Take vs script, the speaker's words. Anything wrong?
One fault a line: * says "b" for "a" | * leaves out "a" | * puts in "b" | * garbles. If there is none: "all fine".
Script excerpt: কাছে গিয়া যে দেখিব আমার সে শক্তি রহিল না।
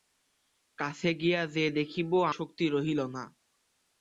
* leaves out "আমার সে"